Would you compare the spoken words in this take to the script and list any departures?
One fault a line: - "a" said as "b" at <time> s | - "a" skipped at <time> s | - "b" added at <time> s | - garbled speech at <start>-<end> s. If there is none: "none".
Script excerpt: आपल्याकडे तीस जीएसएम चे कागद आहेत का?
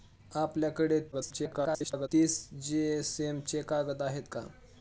- garbled speech at 1.1-2.1 s